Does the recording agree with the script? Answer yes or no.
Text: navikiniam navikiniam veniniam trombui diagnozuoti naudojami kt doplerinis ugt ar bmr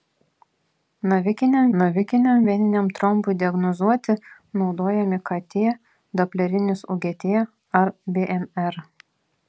yes